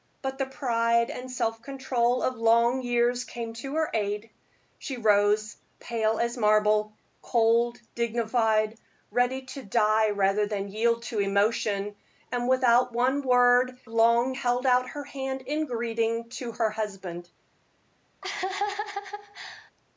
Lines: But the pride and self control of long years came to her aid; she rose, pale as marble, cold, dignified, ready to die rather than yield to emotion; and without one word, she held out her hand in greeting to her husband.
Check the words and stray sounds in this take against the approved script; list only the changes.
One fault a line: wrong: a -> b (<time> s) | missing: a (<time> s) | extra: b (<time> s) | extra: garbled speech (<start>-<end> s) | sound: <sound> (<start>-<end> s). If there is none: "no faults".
wrong: she -> long (13.9 s)
sound: laugh (18.2-19.7 s)